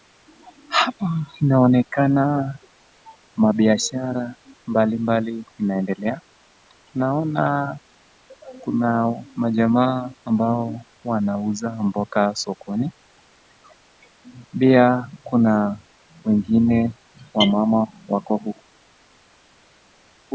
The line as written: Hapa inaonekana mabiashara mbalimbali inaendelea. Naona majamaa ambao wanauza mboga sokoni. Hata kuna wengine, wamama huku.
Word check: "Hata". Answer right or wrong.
wrong